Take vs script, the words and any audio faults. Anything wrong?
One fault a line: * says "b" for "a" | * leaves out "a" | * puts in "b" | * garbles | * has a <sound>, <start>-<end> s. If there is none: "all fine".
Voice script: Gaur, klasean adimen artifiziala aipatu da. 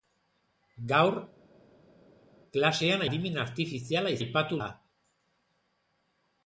all fine